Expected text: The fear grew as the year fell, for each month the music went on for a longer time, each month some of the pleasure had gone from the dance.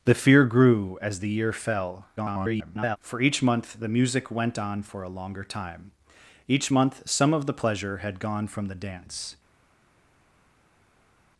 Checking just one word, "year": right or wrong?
right